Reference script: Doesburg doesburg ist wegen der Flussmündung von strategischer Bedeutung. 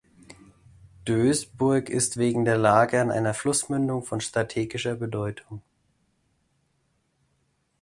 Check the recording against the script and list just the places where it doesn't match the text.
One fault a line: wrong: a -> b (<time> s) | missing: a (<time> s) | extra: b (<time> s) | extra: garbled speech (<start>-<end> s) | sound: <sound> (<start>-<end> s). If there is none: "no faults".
missing: doesburg (1.9 s)
extra: Lage an einer (2.6 s)